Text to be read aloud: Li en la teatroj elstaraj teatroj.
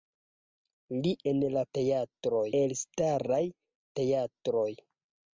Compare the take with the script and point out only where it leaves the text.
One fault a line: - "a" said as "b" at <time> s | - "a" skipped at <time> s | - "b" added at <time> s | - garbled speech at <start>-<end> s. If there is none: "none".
none